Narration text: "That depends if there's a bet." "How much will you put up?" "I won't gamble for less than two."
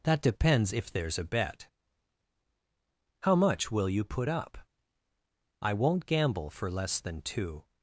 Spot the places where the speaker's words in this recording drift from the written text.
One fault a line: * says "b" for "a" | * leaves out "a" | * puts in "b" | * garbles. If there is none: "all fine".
all fine